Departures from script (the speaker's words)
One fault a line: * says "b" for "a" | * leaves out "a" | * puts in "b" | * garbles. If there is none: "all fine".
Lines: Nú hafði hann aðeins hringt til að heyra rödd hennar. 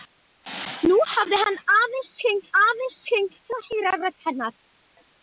* puts in "aðeins hringt"